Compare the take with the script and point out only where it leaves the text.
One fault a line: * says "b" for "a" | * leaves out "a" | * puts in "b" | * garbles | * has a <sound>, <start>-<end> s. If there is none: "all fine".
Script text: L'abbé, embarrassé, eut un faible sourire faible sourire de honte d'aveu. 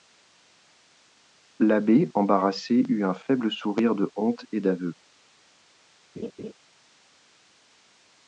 * leaves out "faible sourire"
* puts in "et"
* has a laugh, 6.2-6.5 s